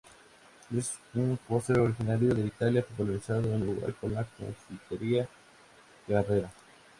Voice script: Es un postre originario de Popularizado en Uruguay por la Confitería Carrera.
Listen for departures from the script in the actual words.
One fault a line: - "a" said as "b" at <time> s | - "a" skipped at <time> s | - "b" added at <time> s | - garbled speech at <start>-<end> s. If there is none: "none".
- "Italia" added at 2.5 s